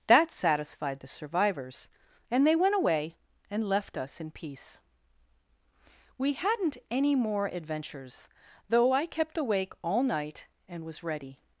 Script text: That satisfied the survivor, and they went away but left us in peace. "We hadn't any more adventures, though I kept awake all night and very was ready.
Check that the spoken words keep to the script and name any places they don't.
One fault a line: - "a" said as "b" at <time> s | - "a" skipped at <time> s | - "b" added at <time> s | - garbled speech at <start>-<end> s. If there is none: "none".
- "survivor" said as "survivors" at 1.1 s
- "but" said as "and" at 3.5 s
- "very" skipped at 10.8 s